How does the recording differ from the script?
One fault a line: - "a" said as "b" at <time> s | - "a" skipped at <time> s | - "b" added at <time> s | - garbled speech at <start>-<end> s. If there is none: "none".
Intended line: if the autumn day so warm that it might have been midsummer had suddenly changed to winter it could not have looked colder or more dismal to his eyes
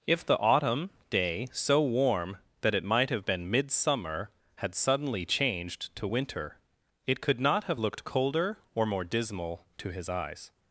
none